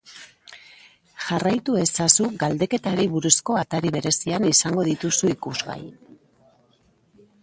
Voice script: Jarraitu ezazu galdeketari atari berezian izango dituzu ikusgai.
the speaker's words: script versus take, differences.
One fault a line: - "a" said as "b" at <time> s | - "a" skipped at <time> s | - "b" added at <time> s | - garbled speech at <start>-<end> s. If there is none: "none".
- "buruzko" added at 3.2 s